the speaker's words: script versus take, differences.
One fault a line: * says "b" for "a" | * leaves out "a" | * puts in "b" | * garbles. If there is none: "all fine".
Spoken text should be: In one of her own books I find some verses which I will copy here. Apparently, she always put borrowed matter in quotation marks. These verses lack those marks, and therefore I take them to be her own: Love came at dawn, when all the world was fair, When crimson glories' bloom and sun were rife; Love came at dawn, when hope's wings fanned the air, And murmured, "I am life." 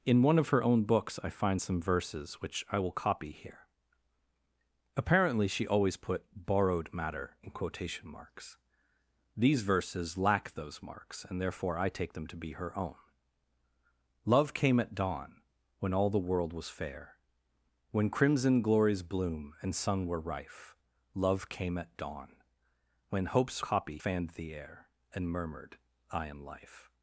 * says "copy" for "wings"